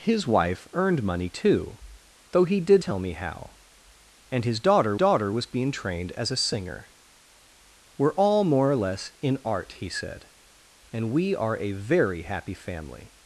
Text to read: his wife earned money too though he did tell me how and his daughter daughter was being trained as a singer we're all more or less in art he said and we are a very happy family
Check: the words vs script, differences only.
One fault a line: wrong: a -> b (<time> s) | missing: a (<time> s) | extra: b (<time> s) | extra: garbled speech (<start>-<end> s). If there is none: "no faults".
no faults